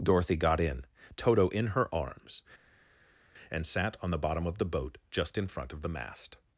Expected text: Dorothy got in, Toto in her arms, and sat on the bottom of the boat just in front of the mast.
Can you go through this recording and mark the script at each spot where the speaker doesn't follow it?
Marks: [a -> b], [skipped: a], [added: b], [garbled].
Dorothy got in, Toto in her arms, and sat on the bottom of the boat just in front of the mast.